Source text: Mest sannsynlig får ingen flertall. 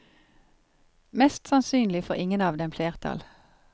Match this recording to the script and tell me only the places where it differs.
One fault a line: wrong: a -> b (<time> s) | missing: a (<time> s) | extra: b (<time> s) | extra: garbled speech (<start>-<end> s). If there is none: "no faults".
extra: av dem (2.4 s)